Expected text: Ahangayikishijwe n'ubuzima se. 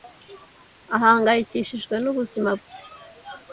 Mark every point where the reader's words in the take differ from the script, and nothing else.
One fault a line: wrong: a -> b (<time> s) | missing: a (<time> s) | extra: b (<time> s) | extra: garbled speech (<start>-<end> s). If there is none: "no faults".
no faults